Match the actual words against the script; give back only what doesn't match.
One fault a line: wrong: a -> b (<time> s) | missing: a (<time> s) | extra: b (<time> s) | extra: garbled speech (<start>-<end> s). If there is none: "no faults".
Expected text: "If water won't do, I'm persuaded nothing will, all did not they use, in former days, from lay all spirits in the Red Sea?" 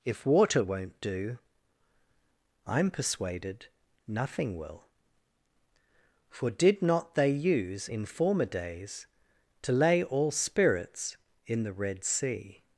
wrong: all -> for (6.3 s)
wrong: from -> to (9.6 s)